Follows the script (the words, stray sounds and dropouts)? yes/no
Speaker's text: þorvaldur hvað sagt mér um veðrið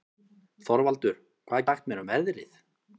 yes